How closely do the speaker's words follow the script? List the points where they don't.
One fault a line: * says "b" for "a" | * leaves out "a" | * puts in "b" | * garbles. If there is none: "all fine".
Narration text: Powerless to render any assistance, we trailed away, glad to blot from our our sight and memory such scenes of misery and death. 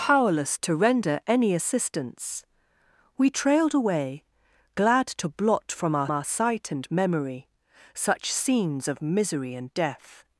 all fine